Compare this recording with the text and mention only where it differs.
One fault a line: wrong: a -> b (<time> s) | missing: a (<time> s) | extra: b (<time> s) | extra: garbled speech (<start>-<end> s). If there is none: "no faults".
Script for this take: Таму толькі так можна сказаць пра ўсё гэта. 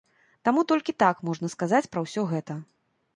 no faults